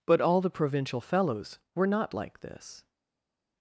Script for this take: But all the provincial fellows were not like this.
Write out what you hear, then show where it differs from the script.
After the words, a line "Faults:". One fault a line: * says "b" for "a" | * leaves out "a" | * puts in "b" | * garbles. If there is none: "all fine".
But all the provincial fellows were not like this.
Faults:
all fine